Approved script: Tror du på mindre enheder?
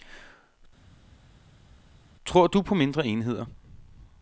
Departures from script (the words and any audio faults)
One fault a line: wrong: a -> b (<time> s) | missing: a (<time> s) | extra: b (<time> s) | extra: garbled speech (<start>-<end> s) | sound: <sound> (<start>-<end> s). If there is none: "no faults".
no faults